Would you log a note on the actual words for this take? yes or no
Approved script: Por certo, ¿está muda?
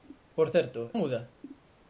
yes